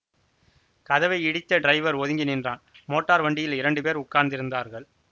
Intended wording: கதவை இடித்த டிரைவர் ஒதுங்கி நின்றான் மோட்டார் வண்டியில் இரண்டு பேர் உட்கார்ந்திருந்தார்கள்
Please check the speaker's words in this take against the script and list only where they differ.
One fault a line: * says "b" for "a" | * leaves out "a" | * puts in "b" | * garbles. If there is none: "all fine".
all fine